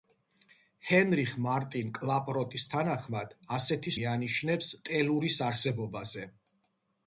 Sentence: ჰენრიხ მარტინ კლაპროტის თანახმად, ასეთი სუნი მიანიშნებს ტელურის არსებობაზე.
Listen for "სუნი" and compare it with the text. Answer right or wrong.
wrong